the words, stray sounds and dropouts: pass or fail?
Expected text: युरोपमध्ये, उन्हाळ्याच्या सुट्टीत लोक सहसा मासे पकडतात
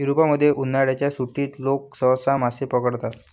pass